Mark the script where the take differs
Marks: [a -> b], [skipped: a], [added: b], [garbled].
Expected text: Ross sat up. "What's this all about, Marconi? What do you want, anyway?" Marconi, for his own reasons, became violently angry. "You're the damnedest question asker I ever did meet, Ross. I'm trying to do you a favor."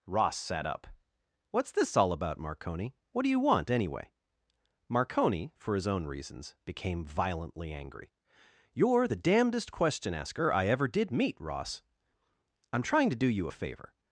Ross sat up. "What's this all about, Marconi? What do you want, anyway?" Marconi, for his own reasons, became violently angry. "You're the damnedest question asker I ever did meet, Ross. I'm trying to do you a favor."